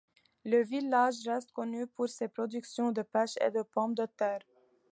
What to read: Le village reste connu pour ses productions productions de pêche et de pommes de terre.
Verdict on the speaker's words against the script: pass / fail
fail